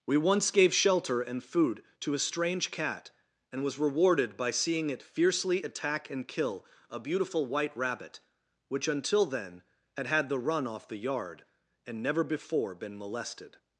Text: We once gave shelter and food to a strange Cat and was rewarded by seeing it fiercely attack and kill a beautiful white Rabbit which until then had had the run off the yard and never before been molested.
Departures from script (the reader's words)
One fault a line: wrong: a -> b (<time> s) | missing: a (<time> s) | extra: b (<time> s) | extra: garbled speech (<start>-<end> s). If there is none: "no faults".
no faults